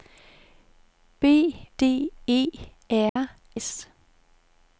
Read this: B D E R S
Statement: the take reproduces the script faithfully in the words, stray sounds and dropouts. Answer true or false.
false